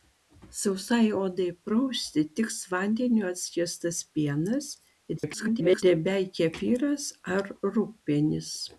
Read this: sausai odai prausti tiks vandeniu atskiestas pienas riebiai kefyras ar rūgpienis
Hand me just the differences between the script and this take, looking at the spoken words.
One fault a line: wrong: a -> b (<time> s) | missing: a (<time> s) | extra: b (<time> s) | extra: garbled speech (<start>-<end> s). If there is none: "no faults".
extra: garbled speech (5.2-5.8 s)